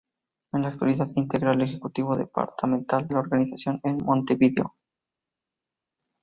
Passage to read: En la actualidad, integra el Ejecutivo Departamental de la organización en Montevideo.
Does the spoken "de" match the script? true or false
false